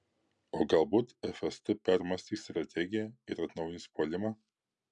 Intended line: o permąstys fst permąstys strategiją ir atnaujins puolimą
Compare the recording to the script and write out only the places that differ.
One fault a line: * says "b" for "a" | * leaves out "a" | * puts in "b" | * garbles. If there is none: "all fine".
* says "galbūt" for "permąstys"